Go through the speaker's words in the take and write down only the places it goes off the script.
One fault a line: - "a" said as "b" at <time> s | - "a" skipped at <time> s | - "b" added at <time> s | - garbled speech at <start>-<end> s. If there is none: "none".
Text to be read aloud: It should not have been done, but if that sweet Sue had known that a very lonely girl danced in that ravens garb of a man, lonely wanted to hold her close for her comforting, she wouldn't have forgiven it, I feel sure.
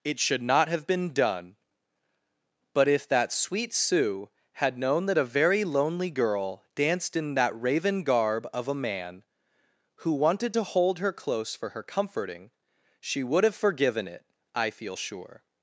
- "ravens" said as "raven" at 7.6 s
- "lonely" said as "who" at 10.0 s
- "wouldn't" said as "would" at 13.2 s